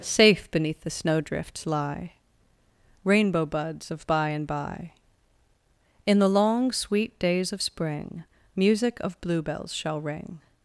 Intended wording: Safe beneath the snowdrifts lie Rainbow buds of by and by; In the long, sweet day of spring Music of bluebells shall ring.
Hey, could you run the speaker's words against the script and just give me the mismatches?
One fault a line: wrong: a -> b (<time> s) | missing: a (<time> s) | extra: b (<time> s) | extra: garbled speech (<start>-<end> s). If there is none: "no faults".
wrong: day -> days (7.2 s)